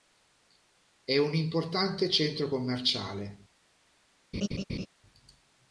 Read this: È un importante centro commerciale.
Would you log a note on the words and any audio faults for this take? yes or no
yes